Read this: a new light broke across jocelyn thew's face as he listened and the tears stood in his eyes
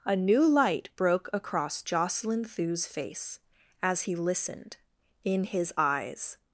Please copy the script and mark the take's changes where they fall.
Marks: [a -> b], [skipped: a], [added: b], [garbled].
a new light broke across jocelyn thew's face as he listened [skipped: and the tears stood] in his eyes